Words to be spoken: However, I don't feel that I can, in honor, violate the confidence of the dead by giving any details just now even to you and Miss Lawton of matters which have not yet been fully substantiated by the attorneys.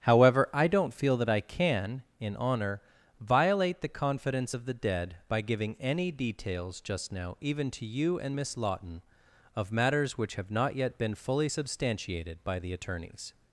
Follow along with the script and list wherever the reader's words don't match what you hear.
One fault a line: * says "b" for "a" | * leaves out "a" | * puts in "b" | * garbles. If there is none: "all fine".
all fine